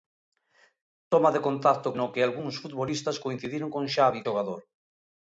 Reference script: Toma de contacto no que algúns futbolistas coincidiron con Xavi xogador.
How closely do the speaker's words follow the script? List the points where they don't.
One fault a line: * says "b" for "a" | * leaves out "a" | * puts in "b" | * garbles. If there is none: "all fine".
all fine